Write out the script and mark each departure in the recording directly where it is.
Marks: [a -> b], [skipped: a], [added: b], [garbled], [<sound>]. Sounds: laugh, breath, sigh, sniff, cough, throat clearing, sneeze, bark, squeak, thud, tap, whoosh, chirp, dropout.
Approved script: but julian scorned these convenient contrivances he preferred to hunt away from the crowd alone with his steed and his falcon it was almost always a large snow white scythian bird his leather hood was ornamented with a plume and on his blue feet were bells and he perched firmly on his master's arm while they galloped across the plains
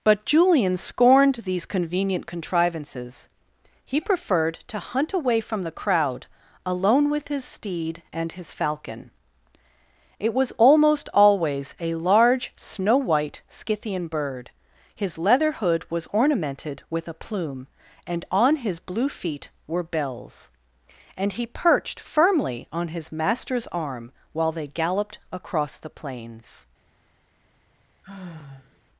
but julian scorned these convenient contrivances he preferred to hunt away from the crowd alone with his steed and his falcon it was almost always a large snow white scythian bird his leather hood was ornamented with a plume and on his blue feet were bells and he perched firmly on his master's arm while they galloped across the plains [sigh]